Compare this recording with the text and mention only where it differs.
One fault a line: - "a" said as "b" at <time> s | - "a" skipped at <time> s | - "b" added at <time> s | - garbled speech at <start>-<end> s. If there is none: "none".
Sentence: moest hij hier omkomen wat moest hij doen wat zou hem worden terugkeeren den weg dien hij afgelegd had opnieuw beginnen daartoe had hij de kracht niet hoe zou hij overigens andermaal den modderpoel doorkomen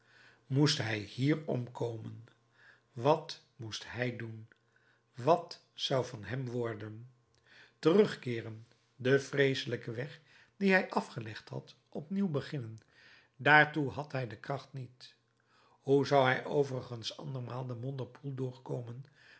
- "van" added at 6.0 s
- "vreeselijken" added at 9.2 s